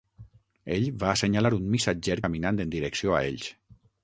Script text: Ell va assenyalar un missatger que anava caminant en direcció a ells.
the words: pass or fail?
fail